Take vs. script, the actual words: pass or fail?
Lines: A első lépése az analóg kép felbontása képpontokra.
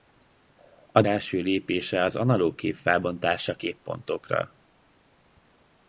pass